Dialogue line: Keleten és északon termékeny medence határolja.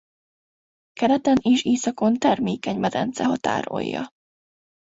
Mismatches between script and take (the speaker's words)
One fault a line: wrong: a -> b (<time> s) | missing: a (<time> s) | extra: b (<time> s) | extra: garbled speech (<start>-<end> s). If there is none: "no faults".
no faults